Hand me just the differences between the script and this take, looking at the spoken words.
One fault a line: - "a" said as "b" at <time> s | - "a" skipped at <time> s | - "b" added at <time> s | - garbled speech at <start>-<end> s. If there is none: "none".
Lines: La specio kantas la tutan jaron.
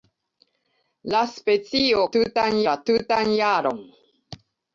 - "kantas" said as "tutan" at 2.2 s